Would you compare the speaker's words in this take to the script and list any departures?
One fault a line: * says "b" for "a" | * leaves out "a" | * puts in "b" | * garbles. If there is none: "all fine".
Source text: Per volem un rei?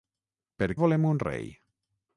all fine